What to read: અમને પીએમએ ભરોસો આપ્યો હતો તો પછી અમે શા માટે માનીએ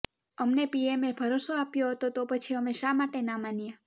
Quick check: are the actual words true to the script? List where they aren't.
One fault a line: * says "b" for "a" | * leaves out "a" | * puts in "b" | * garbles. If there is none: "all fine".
* puts in "ના"